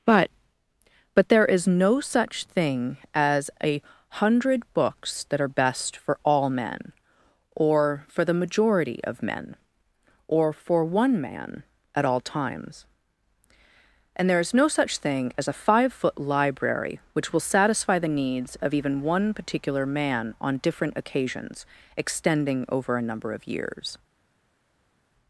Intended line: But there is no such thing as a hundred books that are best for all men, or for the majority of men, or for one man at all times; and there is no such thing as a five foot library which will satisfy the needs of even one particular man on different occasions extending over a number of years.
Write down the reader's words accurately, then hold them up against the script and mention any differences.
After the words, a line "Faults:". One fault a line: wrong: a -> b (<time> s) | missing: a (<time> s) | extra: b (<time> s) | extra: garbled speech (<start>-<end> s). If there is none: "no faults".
But but there is no such thing as a hundred books that are best for all men, or for the majority of men, or for one man at all times; and there is no such thing as a five foot library which will satisfy the needs of even one particular man on different occasions extending over a number of years.
Faults:
extra: but (1.1 s)